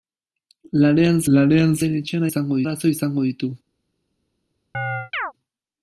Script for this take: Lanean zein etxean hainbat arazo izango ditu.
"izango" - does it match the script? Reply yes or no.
yes